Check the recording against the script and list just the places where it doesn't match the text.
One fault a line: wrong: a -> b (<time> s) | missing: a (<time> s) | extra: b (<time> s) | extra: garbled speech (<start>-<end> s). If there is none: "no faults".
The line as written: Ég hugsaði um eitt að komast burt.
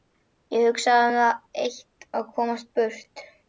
extra: það (1.2 s)